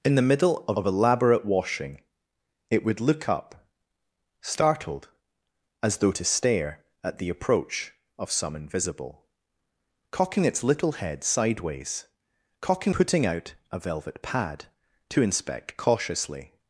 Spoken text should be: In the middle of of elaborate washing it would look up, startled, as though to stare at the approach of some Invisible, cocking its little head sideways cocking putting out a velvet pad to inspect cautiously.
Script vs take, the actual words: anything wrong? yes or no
no